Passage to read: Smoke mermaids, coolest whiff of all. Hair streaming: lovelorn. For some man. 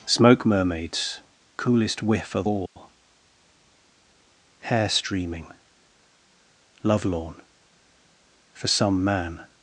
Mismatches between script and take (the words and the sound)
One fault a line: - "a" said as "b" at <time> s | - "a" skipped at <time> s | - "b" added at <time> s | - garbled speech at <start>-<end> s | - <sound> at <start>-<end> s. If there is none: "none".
- dropout at 2.7-2.8 s